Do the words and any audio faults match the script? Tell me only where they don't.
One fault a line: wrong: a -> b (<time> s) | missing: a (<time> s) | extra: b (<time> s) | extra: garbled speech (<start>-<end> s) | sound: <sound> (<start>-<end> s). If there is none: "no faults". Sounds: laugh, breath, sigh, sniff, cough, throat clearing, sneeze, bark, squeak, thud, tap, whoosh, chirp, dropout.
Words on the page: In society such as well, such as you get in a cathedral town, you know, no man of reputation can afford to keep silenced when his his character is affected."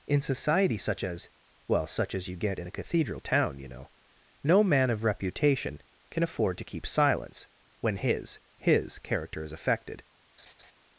wrong: silenced -> silence (6.9 s)
sound: laugh (10.4-10.7 s)